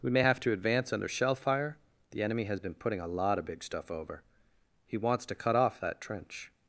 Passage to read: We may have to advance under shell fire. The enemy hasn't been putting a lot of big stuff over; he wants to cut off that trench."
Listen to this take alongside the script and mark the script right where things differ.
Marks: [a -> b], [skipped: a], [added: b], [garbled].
We may have to advance under shell fire. The enemy [hasn't -> has] been putting a lot of big stuff over; he wants to cut off that trench."